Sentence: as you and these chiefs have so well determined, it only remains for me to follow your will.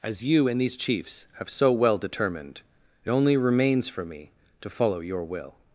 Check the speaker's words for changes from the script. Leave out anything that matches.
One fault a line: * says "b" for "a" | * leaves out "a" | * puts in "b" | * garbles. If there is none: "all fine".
all fine